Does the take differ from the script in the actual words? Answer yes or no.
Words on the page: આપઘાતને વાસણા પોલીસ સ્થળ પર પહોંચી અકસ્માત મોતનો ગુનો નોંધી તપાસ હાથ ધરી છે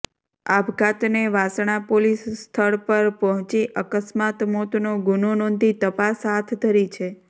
no